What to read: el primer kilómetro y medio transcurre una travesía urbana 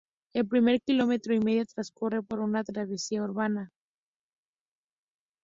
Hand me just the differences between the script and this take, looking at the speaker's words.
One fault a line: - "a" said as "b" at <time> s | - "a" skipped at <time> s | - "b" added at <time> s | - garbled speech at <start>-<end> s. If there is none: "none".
- "por" added at 2.2 s